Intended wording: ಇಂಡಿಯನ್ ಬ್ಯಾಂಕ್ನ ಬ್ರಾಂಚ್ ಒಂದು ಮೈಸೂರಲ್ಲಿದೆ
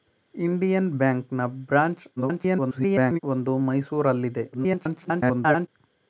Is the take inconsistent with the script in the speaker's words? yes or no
yes